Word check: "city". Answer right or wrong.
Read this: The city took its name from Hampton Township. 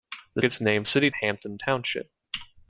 wrong